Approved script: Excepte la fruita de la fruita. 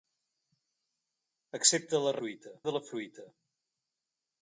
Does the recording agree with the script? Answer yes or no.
yes